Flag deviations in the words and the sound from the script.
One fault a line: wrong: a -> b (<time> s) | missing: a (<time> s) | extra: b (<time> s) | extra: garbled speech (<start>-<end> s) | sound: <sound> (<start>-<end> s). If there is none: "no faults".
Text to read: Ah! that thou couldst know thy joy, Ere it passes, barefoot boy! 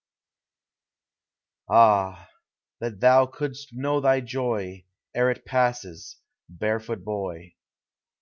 no faults